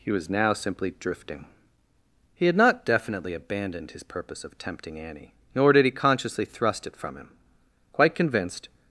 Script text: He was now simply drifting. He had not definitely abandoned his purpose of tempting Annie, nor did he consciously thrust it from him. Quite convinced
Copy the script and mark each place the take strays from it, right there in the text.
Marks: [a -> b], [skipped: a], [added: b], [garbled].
He was now simply drifting. He had not definitely abandoned his purpose of tempting Annie, nor did he consciously thrust it from him. Quite convinced